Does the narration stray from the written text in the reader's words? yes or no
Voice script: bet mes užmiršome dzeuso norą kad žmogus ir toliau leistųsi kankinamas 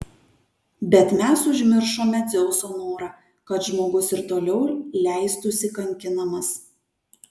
no